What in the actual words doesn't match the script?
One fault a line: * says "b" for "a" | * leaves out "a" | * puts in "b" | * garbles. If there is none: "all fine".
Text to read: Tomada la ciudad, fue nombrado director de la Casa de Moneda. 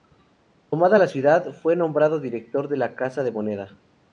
all fine